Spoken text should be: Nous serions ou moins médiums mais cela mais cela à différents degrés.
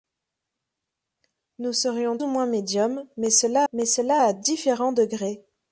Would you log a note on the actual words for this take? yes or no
no